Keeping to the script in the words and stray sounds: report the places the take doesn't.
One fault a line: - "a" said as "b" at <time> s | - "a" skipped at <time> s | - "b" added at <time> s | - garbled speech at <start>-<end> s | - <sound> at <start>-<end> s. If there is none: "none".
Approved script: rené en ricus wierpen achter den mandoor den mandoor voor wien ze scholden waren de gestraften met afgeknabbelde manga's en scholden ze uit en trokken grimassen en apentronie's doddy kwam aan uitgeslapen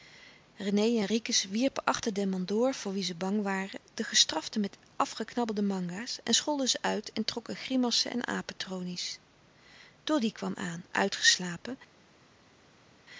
- "den mandoor" skipped at 2.7 s
- "scholden" said as "bang" at 3.1 s